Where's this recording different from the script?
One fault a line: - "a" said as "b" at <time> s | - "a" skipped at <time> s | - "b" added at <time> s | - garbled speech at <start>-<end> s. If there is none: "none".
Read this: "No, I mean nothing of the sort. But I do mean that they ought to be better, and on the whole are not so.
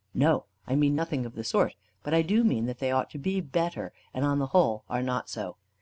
none